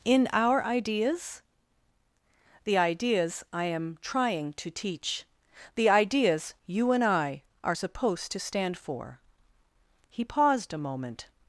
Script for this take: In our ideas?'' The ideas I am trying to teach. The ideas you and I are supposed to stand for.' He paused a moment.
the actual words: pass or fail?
pass